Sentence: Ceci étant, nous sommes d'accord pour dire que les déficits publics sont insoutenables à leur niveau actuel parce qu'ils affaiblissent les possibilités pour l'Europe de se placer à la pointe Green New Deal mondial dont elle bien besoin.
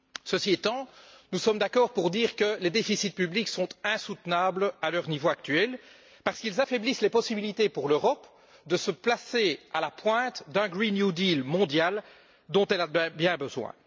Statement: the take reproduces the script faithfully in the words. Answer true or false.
false